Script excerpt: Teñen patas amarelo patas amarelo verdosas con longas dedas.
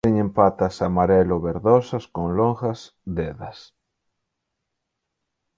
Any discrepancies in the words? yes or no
yes